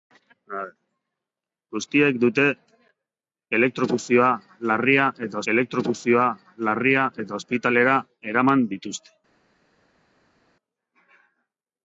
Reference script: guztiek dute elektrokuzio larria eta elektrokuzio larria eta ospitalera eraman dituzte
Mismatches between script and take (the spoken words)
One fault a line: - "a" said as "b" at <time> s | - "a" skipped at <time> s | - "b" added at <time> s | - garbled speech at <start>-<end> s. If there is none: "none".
none